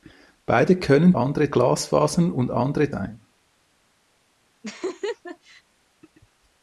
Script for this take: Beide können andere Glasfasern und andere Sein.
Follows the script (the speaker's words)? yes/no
yes